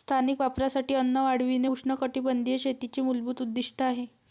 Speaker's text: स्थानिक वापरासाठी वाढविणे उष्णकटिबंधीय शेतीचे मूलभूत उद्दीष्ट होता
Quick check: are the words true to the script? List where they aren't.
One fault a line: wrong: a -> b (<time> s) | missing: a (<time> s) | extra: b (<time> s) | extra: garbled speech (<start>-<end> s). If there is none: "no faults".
extra: अन्न (0.9 s)
wrong: होता -> आहे (3.8 s)